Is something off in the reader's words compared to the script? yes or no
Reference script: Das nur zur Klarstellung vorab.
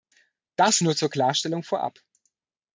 no